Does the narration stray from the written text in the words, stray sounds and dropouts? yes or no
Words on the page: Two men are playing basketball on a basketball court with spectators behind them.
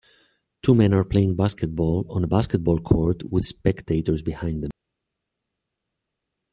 no